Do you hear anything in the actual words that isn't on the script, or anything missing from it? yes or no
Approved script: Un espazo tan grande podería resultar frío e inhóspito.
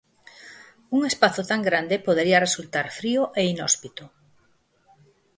no